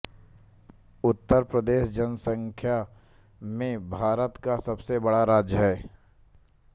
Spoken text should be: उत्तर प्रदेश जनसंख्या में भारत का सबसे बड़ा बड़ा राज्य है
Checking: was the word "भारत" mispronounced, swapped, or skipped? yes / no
no